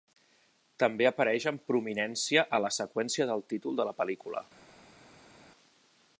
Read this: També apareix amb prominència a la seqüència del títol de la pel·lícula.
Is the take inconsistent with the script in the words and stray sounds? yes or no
no